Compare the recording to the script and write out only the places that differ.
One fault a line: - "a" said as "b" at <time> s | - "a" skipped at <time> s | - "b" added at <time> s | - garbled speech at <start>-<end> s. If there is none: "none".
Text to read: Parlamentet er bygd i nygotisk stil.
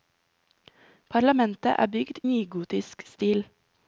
- "i" skipped at 2.2 s